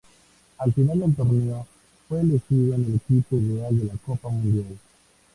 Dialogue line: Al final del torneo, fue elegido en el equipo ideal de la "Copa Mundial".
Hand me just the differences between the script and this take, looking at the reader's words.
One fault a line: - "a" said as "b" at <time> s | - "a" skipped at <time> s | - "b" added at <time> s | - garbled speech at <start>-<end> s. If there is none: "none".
none